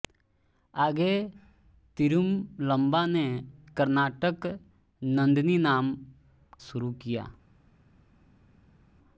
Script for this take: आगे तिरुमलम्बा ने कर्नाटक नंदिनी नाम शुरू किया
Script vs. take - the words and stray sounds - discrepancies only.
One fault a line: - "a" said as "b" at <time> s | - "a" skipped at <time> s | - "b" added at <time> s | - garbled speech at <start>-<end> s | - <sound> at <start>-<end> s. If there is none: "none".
none